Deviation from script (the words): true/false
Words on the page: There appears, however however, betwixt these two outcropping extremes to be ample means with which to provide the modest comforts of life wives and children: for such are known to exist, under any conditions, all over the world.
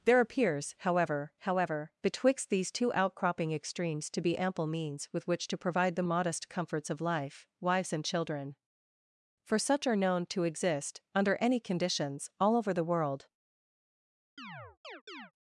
false